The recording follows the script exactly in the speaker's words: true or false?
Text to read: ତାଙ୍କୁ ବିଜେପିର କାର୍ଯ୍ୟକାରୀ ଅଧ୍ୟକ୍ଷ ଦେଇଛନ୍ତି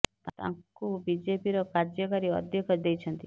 true